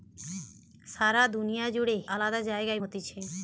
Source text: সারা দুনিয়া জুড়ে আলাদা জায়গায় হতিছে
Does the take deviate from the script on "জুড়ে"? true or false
false